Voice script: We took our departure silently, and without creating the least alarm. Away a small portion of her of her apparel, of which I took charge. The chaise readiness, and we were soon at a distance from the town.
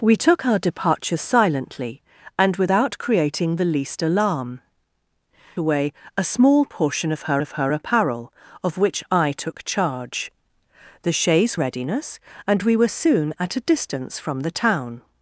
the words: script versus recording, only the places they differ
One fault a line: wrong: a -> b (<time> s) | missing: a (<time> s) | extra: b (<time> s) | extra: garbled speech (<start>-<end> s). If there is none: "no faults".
no faults